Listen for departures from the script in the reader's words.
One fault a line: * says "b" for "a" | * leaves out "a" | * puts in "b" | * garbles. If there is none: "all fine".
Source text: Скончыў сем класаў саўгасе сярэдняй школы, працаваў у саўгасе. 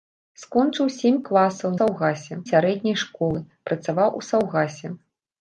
all fine